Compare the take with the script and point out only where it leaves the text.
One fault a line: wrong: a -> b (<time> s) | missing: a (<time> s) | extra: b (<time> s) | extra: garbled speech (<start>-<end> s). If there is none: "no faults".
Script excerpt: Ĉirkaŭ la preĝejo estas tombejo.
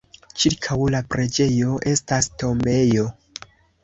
no faults